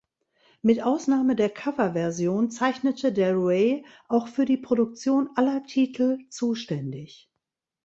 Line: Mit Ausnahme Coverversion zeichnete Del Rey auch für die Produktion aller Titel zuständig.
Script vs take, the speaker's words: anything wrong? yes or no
yes